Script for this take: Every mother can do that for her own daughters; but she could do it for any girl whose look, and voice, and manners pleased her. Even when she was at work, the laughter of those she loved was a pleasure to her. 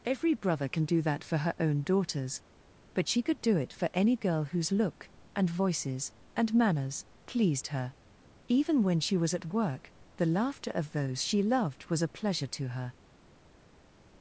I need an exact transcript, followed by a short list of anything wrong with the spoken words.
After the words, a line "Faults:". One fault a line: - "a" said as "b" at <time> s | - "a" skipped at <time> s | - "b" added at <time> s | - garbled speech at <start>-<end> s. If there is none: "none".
Every brother can do that for her own daughters; but she could do it for any girl whose look, and voices, and manners pleased her. Even when she was at work, the laughter of those she loved was a pleasure to her.
Faults:
- "mother" said as "brother" at 0.3 s
- "voice" said as "voices" at 5.5 s